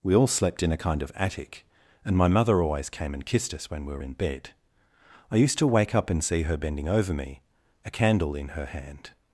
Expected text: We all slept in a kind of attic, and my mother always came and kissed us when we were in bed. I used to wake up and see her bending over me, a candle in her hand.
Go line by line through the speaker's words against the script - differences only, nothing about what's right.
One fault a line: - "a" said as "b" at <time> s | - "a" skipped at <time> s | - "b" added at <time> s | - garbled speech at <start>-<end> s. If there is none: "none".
none